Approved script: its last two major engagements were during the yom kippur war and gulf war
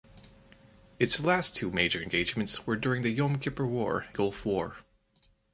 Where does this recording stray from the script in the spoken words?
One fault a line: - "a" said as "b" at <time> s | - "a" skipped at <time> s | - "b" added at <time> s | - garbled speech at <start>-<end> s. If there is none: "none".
- "and" skipped at 4.1 s